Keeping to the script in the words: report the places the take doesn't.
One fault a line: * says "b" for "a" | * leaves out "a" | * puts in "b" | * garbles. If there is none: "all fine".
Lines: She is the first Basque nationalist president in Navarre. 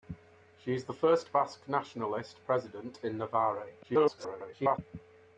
* garbles